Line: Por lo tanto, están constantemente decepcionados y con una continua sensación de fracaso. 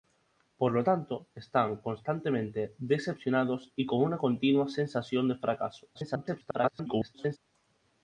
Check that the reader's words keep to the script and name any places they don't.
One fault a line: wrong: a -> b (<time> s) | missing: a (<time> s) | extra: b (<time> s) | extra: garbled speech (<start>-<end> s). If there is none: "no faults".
extra: garbled speech (5.9-7.4 s)